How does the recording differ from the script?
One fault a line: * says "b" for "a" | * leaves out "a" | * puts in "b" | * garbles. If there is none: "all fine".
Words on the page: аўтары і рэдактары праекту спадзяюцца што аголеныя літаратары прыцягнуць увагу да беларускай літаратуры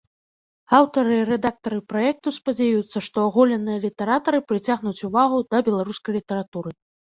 all fine